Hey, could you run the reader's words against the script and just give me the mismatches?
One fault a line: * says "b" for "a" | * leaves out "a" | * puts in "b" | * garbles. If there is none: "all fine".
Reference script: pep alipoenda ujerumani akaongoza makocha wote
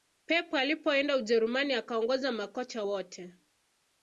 all fine